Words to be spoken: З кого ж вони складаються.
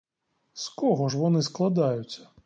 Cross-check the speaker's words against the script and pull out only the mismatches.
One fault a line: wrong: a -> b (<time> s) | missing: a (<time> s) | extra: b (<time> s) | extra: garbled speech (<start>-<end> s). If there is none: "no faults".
no faults